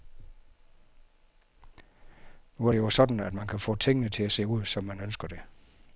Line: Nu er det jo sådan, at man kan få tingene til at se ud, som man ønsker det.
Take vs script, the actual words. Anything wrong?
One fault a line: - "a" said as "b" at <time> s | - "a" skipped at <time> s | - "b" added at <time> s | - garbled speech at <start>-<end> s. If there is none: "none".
none